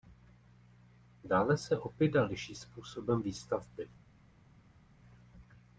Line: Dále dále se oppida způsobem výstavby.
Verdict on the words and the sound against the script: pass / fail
fail